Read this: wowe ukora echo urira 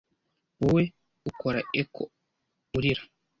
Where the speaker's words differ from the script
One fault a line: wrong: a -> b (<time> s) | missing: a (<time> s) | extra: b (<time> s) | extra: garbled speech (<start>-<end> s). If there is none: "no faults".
no faults